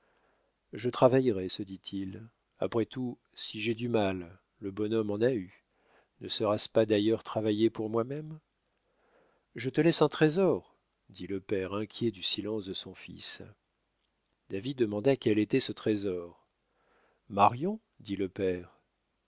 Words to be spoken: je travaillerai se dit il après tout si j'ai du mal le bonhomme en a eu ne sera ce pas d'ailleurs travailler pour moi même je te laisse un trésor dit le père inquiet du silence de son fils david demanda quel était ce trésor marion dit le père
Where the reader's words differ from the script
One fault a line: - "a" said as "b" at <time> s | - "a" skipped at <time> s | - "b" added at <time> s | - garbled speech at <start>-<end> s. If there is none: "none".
none